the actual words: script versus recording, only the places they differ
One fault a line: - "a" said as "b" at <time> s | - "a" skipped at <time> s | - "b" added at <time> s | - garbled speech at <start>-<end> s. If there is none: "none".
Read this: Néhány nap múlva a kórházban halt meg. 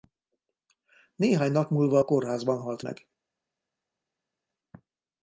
none